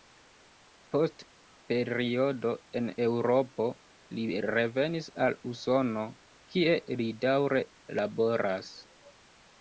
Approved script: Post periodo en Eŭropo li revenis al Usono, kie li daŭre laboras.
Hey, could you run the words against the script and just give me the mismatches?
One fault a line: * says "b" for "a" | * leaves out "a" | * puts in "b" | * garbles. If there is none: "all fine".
all fine